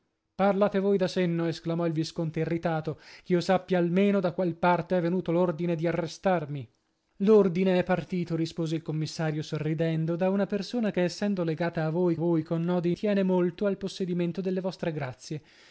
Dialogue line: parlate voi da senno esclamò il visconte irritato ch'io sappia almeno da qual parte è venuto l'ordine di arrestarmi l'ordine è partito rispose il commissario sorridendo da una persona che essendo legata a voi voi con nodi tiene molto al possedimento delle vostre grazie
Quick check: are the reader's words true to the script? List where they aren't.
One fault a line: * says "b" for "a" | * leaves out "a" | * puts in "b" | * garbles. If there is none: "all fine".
all fine